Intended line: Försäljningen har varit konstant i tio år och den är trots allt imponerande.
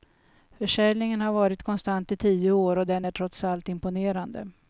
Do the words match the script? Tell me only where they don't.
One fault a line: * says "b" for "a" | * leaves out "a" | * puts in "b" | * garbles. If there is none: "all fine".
all fine